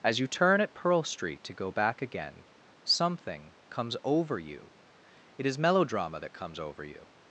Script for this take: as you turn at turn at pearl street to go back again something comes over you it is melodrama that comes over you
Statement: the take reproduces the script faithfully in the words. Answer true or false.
false